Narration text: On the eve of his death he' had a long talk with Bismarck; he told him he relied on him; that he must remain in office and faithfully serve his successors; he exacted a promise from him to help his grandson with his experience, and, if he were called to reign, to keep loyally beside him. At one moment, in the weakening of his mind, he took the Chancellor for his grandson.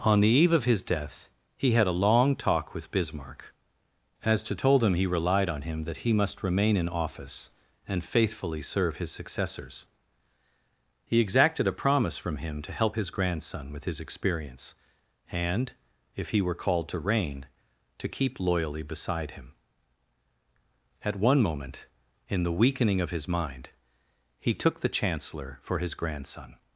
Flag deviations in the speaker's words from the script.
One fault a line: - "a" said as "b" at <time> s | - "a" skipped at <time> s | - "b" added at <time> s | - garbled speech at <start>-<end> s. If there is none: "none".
- "he" said as "as to" at 4.2 s